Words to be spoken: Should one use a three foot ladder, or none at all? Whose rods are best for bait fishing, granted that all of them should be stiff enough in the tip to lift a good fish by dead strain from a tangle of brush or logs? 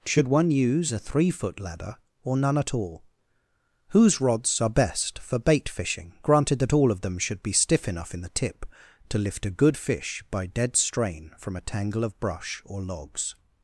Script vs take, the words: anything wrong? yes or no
no